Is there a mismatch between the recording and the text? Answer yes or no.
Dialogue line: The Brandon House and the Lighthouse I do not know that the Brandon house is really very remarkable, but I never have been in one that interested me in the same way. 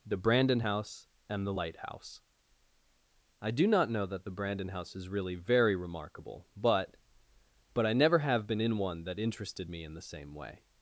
yes